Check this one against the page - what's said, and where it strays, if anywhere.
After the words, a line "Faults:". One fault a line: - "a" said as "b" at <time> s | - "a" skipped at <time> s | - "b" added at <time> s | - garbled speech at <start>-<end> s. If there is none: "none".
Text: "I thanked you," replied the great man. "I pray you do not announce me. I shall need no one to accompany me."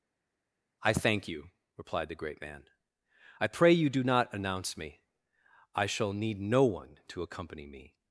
"I thank you," replied the great man. "I pray you do not announce me. I shall need no one to accompany me."
Faults:
- "thanked" said as "thank" at 0.9 s